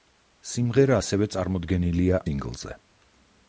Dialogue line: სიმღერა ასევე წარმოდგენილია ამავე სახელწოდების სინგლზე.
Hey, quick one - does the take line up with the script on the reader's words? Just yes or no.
no